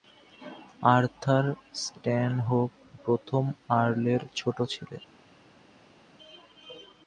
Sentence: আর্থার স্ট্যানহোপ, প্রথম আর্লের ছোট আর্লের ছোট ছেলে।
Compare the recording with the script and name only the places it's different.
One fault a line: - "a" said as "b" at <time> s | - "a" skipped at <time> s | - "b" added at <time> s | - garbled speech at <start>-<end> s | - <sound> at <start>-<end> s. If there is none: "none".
- "আর্লের ছোট" skipped at 4.6 s